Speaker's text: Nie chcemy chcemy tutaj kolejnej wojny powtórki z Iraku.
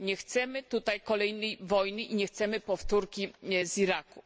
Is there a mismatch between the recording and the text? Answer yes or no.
yes